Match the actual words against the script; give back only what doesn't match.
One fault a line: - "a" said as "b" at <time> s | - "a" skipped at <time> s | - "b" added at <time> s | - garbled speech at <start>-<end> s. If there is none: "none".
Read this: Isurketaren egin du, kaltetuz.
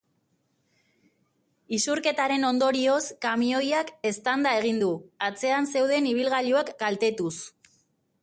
- "ondorioz kamioiak eztanda" added at 2.5 s
- "atzean zeuden ibilgailuak" added at 5.3 s